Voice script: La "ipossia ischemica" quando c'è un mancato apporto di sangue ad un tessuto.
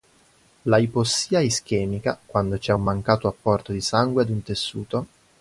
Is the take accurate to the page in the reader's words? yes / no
yes